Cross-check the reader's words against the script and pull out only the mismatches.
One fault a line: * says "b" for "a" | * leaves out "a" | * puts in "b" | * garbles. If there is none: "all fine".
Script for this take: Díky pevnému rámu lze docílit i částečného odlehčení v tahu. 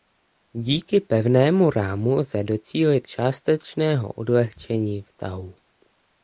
* leaves out "i"